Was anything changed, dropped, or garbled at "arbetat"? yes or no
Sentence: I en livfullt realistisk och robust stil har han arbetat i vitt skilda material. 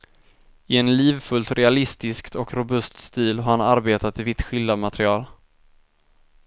no